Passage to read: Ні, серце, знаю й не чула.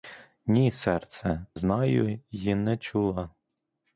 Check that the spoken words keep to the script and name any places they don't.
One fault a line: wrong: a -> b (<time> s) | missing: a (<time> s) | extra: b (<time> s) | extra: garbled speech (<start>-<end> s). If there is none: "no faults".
no faults